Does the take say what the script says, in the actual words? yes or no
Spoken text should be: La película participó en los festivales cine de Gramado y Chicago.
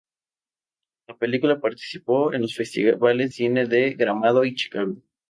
yes